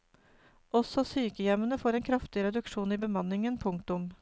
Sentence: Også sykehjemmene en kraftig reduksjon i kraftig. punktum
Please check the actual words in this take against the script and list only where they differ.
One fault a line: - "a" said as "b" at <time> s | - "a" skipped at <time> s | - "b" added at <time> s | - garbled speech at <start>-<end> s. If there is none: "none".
- "får" added at 1.8 s
- "kraftig" said as "bemanningen" at 3.0 s